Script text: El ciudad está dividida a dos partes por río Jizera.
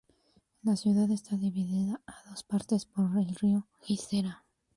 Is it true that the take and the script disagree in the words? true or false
true